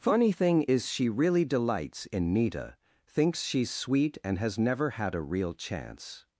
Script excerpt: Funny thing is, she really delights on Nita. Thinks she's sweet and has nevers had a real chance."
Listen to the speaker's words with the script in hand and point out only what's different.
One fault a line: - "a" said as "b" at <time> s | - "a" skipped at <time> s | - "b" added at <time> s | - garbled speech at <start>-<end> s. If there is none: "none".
- "on" said as "in" at 2.1 s
- "nevers" said as "never" at 4.6 s